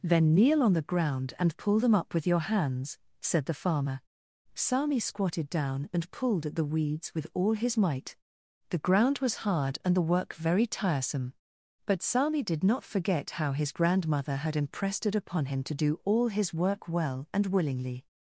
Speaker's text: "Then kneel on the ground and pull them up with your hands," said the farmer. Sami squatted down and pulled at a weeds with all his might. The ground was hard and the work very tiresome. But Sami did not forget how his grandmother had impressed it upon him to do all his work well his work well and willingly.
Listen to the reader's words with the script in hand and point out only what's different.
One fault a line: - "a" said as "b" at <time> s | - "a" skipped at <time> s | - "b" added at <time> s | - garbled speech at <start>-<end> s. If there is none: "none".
- "a" said as "the" at 6.5 s
- "his work well" skipped at 17.3 s